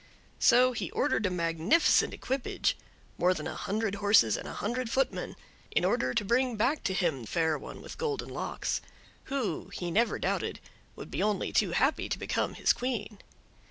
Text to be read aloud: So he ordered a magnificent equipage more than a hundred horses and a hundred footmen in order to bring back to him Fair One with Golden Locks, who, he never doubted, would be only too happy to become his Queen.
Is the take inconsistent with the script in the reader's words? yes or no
no